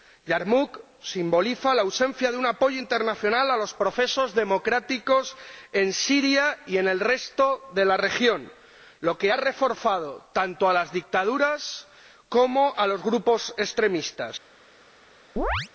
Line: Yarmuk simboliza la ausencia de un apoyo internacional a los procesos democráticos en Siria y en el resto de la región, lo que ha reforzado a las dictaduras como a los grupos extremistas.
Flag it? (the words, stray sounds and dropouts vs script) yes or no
yes